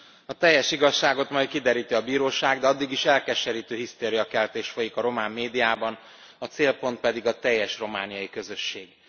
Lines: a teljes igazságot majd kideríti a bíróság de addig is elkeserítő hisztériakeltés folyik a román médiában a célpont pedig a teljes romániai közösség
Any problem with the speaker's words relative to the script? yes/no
no